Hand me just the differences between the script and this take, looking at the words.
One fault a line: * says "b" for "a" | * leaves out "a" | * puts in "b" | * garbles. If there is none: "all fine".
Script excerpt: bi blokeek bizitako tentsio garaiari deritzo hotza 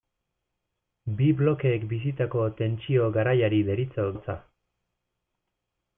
all fine